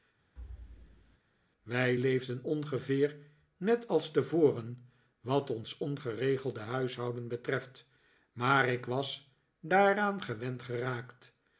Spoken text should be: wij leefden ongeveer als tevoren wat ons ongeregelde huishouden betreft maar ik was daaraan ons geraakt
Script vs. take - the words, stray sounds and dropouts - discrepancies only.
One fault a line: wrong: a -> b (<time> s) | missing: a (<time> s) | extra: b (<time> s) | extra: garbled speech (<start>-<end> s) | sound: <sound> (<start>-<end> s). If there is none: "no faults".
sound: thud (0.4-1.2 s)
extra: net (3.6 s)
wrong: ons -> gewend (10.2 s)